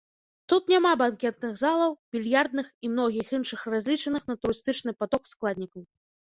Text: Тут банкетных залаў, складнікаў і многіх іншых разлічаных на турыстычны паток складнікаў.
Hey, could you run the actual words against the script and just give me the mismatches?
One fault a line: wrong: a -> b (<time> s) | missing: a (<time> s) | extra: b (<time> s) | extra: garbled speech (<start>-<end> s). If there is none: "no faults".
extra: няма (0.7 s)
wrong: складнікаў -> більярдных (2.2 s)